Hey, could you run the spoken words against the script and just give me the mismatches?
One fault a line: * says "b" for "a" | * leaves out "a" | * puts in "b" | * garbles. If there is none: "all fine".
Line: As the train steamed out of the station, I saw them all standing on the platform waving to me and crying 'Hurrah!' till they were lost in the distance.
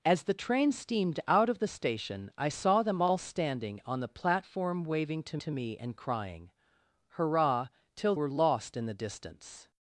* puts in "to"
* leaves out "they"